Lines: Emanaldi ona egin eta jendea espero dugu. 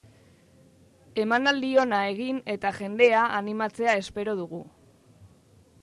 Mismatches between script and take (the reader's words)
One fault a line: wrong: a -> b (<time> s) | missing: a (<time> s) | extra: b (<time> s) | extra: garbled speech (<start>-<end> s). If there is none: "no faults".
extra: animatzea (3.4 s)